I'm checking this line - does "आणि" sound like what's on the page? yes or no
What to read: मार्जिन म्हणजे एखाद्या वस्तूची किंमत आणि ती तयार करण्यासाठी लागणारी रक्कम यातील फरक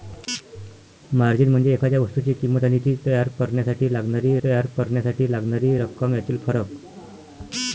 yes